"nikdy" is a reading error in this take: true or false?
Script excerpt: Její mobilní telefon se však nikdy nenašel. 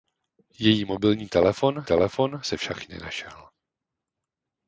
true